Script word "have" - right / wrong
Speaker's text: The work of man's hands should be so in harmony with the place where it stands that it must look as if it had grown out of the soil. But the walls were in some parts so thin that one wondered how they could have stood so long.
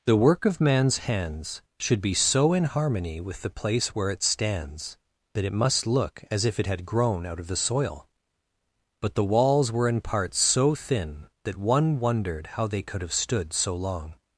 right